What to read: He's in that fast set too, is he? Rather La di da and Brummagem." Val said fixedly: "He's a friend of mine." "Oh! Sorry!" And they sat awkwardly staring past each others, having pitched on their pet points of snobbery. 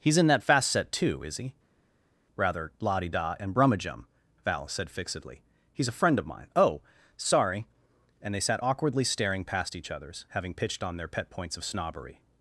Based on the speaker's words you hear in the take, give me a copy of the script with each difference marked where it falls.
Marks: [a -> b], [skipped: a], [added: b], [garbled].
He's in that fast set too, is he? Rather La di da and Brummagem." Val said fixedly: "He's a friend of mine." "Oh! Sorry!" And they sat awkwardly staring past each others, having pitched on their pet points of snobbery.